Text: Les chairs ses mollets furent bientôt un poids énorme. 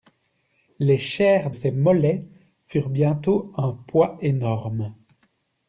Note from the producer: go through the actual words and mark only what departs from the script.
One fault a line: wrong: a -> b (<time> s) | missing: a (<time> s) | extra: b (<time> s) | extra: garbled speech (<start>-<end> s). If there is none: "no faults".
no faults